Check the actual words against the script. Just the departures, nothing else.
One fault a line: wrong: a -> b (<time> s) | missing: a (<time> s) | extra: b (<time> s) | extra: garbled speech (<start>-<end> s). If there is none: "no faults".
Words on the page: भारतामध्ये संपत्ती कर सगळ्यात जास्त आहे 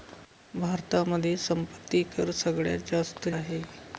no faults